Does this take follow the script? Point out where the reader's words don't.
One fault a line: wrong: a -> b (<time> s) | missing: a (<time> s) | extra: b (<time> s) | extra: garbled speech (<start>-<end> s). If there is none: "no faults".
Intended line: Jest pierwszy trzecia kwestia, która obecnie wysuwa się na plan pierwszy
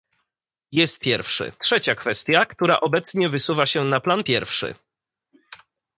no faults